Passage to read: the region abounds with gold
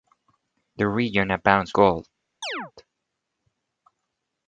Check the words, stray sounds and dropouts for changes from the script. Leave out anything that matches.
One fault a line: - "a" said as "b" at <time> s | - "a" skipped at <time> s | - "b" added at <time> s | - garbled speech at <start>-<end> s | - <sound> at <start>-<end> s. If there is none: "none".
- "with" skipped at 1.8 s
- chirp at 2.4-2.7 s